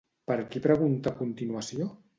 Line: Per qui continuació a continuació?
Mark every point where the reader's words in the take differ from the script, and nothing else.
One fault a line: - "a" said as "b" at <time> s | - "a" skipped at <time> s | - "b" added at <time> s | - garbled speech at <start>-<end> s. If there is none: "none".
- "continuació" said as "pregunta" at 0.7 s